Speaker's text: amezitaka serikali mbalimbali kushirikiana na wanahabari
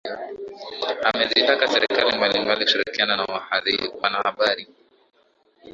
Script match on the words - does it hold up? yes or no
yes